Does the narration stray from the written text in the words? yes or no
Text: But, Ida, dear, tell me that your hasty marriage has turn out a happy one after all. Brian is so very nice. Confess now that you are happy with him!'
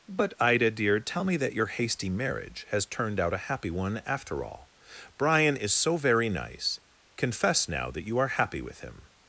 yes